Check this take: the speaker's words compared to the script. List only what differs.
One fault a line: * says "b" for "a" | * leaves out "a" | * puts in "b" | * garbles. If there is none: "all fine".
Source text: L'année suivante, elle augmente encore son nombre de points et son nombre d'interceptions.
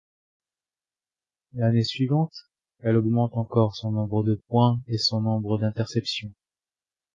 all fine